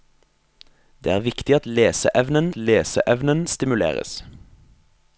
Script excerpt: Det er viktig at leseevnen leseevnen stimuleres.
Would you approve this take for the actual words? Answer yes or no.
yes